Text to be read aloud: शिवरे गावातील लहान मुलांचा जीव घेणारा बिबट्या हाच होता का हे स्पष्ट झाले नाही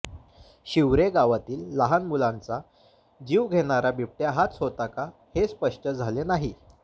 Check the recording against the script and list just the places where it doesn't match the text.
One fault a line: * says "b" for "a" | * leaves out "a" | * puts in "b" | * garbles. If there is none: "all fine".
all fine